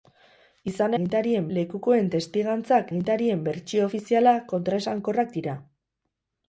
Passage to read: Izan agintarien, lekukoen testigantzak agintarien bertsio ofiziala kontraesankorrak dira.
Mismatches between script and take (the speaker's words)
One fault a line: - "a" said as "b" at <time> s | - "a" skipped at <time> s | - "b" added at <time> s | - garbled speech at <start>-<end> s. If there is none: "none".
none